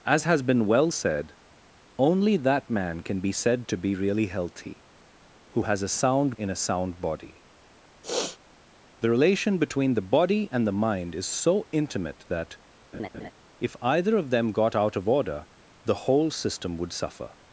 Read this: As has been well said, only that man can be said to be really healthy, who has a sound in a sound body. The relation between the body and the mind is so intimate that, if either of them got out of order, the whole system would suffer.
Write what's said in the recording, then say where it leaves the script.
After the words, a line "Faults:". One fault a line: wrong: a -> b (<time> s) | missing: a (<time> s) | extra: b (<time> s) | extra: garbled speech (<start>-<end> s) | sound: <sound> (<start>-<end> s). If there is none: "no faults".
As has been well said, only that man can be said to be really healthy, who has a sound in a sound body. The relation between the body and the mind is so intimate that, if either of them got out of order, the whole system would suffer.
Faults:
sound: sniff (8.0-8.4 s)
sound: laugh (12.9-13.3 s)